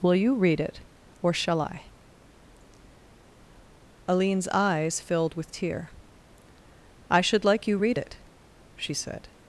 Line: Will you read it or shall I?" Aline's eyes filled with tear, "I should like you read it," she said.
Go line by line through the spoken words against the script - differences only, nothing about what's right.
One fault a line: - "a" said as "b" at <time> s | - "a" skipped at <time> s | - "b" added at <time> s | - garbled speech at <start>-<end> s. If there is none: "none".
none